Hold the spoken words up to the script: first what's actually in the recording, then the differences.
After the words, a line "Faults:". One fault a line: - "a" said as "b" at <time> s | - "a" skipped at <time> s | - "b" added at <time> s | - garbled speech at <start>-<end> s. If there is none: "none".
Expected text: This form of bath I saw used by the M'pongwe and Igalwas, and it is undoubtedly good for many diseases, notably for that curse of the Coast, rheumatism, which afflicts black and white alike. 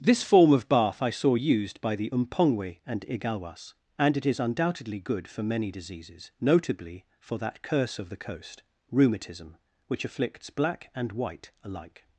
This form of bath I saw used by the M'pongwe and Igalwas, and it is undoubtedly good for many diseases, notably for that curse of the Coast, rheumatism, which afflicts black and white alike.
Faults:
none